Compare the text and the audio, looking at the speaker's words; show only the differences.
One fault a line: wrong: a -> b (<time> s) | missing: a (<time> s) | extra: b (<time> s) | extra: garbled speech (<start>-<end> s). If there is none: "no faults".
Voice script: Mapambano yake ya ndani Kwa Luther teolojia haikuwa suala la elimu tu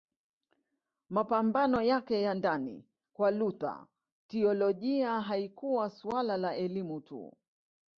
no faults